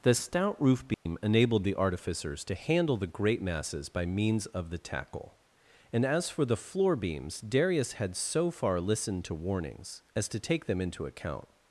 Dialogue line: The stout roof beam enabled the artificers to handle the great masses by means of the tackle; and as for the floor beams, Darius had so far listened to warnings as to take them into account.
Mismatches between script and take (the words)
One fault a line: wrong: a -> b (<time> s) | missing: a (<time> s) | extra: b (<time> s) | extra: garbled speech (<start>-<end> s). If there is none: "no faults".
no faults